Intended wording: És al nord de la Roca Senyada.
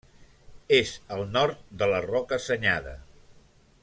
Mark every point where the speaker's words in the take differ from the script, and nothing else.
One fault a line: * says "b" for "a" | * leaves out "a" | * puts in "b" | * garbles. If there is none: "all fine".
all fine